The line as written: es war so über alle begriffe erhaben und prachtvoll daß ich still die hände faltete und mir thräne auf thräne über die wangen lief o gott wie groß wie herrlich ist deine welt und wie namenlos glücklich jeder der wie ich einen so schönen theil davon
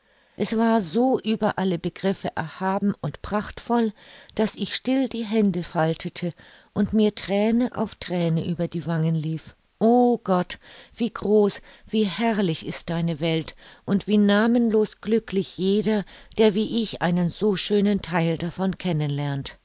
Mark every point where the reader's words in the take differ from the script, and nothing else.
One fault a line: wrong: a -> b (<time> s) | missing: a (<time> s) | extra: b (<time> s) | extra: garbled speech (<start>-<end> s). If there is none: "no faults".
no faults